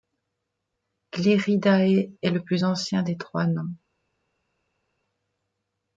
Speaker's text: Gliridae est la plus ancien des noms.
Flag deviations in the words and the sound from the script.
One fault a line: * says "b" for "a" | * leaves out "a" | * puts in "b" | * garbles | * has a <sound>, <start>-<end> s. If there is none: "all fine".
* says "le" for "la"
* puts in "trois"